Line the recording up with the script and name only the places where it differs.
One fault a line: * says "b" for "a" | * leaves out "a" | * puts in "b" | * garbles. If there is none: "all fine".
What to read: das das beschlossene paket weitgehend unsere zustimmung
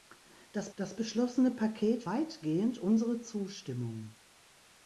all fine